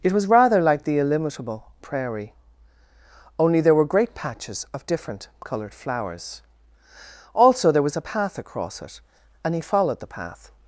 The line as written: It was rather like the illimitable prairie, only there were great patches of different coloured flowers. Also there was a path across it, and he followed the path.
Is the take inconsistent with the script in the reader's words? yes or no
no